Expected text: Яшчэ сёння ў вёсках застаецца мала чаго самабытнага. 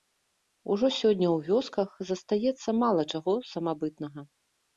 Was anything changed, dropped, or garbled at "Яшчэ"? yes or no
yes